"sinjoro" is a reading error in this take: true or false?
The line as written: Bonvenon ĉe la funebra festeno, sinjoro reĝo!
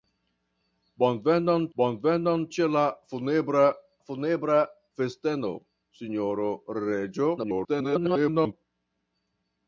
false